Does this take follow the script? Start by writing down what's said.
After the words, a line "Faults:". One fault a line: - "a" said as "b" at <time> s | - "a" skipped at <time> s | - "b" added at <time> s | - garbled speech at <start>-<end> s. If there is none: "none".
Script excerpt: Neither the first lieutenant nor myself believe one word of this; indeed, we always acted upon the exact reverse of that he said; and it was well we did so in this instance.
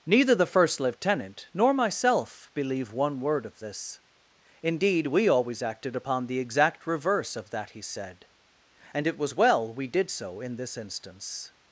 Neither the first lieutenant nor myself believe one word of this; indeed, we always acted upon the exact reverse of that he said; and it was well we did so in this instance.
Faults:
none